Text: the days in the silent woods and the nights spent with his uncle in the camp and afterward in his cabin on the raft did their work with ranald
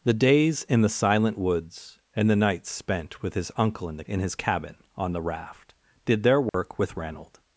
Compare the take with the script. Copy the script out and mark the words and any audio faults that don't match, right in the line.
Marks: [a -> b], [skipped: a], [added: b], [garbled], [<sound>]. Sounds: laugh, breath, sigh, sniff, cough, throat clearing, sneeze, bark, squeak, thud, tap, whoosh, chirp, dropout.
the days in the silent woods and the nights spent with his uncle in the [skipped: camp and afterward] in his cabin on the raft did their work [dropout] with ranald